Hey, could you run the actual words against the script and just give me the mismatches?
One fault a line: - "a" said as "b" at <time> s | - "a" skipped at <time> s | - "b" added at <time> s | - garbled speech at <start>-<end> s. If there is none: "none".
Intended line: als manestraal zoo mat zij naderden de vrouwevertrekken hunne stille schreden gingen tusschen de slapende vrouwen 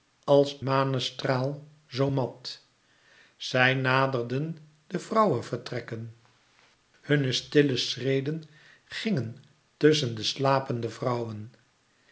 none